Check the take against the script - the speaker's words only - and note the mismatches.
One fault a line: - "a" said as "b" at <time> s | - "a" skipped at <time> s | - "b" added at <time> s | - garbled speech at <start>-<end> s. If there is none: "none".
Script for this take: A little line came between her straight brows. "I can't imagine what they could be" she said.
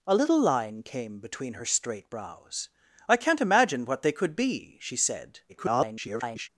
- garbled speech at 5.5-6.5 s